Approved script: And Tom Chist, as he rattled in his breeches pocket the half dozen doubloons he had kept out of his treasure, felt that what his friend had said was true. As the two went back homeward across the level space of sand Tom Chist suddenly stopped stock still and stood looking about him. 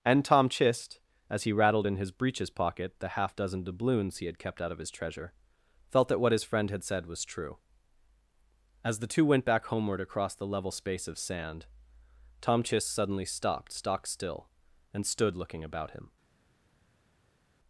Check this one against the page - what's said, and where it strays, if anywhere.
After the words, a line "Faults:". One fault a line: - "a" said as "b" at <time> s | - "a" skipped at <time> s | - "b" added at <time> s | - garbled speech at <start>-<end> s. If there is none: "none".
And Tom Chist, as he rattled in his breeches pocket the half dozen doubloons he had kept out of his treasure, felt that what his friend had said was true. As the two went back homeward across the level space of sand Tom Chist suddenly stopped stock still and stood looking about him.
Faults:
none